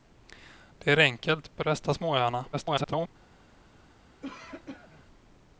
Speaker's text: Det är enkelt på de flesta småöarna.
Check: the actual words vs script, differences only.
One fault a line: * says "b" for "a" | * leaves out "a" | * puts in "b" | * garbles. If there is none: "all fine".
* leaves out "de"
* garbles